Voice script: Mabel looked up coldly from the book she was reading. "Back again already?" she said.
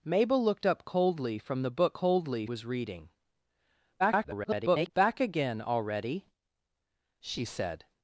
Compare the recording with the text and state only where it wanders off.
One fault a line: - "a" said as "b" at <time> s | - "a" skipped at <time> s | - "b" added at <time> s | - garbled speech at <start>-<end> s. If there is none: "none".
- "she" said as "coldly" at 1.9 s
- garbled speech at 4.0-4.9 s